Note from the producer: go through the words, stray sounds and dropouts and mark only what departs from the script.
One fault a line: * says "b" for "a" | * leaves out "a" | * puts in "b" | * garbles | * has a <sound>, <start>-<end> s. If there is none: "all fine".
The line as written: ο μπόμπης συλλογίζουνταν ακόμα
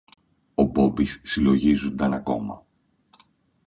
all fine